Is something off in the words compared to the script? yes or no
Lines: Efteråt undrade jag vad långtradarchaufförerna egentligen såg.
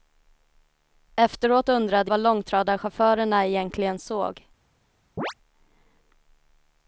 yes